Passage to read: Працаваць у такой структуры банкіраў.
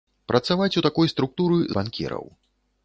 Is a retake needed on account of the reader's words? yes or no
no